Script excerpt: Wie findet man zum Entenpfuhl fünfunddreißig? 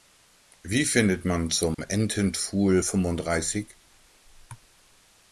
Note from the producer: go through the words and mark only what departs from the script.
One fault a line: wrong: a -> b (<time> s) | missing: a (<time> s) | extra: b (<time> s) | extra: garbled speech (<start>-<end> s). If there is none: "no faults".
no faults